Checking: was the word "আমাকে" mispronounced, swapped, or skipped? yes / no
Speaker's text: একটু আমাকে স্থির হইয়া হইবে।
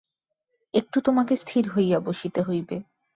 yes